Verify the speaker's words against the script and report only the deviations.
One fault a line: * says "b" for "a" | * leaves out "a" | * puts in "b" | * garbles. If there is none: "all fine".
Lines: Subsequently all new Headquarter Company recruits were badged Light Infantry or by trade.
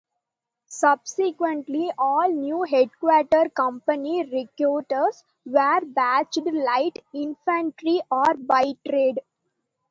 all fine